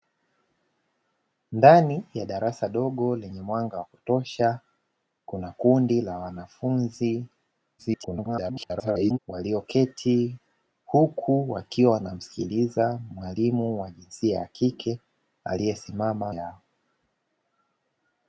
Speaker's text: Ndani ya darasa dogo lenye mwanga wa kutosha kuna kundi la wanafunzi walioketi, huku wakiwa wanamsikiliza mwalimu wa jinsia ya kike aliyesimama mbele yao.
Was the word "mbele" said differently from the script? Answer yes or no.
yes